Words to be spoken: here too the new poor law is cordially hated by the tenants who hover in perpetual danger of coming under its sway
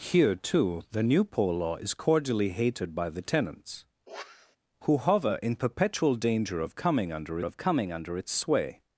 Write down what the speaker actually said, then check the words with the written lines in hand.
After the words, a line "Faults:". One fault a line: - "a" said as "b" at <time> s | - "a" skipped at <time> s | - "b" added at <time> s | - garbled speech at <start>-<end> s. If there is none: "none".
here too the new poor law is cordially hated by the tenants who hover in perpetual danger of coming under of coming under its sway
Faults:
- "of coming under" added at 7.4 s